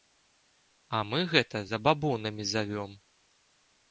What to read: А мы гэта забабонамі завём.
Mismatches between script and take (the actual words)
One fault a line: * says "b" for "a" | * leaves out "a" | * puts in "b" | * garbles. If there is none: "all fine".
all fine